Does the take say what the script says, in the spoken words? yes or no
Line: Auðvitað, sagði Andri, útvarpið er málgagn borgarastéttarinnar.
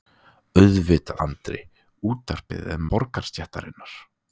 no